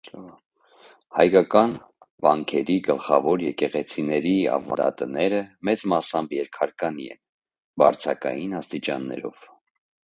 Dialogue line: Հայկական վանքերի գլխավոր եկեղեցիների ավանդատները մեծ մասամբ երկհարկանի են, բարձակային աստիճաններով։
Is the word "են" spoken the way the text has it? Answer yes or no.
yes